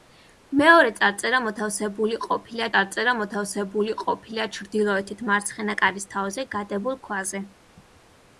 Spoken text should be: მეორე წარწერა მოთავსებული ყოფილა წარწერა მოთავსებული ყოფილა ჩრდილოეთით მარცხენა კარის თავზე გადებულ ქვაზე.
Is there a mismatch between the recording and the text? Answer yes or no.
no